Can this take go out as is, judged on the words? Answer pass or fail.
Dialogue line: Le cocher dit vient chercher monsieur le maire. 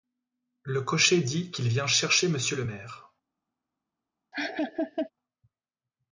fail